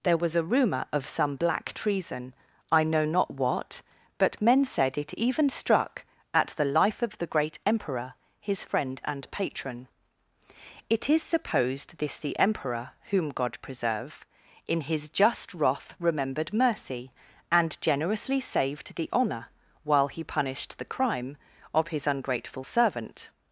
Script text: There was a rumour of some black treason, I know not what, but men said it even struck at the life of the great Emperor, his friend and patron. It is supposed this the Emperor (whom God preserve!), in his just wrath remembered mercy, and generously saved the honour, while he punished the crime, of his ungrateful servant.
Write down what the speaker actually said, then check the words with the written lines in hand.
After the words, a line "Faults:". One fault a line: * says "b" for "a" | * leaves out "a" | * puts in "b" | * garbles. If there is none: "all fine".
There was a rumour of some black treason, I know not what, but men said it even struck at the life of the great Emperor, his friend and patron. It is supposed this the Emperor (whom God preserve!), in his just wrath remembered mercy, and generously saved the honour, while he punished the crime, of his ungrateful servant.
Faults:
all fine